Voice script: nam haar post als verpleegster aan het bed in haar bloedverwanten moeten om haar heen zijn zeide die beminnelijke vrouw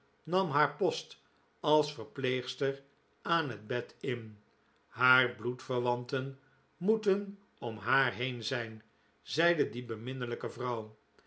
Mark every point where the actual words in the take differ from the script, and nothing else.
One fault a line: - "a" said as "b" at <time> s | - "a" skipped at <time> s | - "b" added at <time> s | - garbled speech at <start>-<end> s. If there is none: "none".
none